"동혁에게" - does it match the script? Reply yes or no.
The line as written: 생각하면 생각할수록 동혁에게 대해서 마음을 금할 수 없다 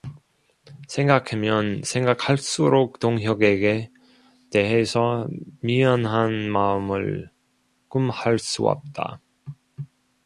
yes